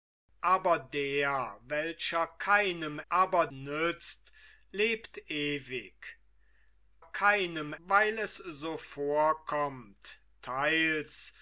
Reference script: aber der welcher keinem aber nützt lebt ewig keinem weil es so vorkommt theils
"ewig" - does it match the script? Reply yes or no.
yes